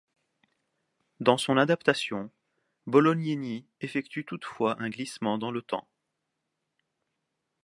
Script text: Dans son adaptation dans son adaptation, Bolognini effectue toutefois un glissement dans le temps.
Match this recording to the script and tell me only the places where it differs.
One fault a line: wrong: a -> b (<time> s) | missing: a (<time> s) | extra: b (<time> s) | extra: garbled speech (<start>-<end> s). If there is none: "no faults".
missing: dans son adaptation (2.3 s)